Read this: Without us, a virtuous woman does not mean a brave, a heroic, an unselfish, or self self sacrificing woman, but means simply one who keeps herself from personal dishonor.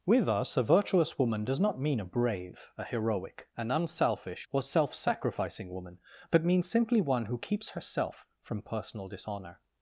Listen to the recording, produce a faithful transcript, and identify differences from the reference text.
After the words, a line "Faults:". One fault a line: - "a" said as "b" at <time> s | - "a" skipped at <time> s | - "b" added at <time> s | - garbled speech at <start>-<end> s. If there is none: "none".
With us, a virtuous woman does not mean a brave, a heroic, an unselfish, or self sacrificing woman, but means simply one who keeps herself from personal dishonor.
Faults:
- "Without" said as "With" at 0.1 s
- "self" skipped at 4.9 s